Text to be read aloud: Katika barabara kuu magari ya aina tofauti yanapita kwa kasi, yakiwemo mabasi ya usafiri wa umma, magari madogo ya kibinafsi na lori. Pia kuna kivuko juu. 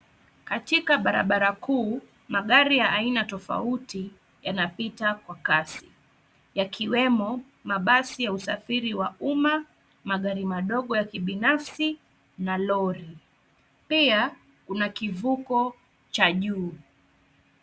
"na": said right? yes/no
yes